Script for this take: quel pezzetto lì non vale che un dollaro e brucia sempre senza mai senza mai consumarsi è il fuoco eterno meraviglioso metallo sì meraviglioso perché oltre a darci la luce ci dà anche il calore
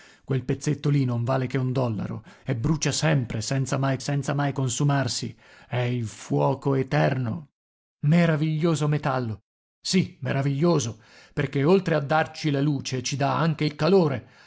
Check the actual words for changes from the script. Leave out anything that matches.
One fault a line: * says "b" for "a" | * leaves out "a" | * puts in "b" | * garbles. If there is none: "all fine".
all fine